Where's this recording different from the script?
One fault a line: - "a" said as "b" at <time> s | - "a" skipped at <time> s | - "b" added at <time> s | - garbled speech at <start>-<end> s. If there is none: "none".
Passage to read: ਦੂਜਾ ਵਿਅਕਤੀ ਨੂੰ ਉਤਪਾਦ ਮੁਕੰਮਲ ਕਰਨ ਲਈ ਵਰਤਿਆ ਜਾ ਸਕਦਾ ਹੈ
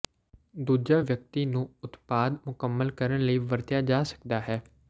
none